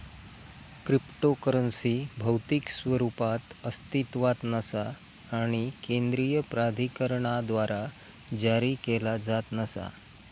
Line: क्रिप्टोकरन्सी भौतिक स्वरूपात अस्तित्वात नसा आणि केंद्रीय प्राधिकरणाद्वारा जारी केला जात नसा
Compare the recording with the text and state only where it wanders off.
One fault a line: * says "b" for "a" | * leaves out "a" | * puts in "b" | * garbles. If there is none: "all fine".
all fine